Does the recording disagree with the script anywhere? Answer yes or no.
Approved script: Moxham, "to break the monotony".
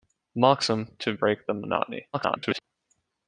yes